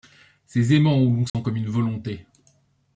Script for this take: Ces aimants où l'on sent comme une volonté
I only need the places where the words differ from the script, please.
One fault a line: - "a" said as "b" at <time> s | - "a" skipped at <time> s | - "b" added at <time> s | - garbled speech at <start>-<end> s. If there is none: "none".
none